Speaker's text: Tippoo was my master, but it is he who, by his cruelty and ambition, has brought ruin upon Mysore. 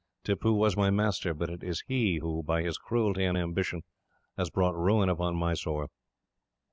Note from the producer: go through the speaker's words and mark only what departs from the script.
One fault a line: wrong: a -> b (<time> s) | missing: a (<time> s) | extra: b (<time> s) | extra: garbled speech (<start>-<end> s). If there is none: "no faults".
no faults